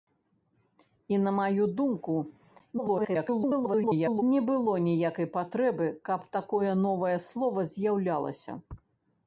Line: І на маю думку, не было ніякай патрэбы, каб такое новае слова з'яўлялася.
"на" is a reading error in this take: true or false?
false